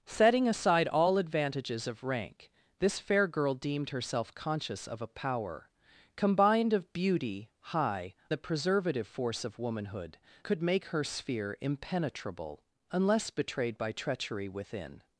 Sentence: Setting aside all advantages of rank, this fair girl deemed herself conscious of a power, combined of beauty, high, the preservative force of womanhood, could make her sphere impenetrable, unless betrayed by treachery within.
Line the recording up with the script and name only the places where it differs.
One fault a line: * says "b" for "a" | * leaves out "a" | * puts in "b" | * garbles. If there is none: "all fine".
all fine